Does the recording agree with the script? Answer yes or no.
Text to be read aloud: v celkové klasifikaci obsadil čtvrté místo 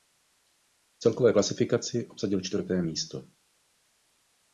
yes